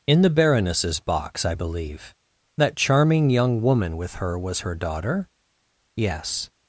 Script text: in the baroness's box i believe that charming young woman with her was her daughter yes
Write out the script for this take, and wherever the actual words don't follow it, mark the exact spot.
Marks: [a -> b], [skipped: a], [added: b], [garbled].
in the baroness's box i believe that charming young woman with her was her daughter yes